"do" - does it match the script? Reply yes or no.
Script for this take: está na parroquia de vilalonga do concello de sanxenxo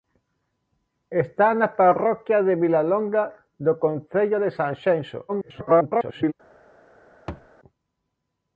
yes